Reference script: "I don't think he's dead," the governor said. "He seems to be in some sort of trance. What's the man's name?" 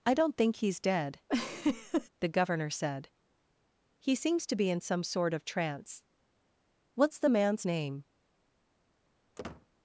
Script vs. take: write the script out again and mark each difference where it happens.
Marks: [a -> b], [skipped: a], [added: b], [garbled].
"I don't think he's dead," the governor said. "He seems to be in some sort of trance. What's the man's name?"